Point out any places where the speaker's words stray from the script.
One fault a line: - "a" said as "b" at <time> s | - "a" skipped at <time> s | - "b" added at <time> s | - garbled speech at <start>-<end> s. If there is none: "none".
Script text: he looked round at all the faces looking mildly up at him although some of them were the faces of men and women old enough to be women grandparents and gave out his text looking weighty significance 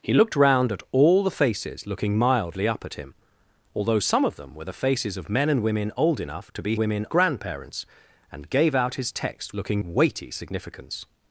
none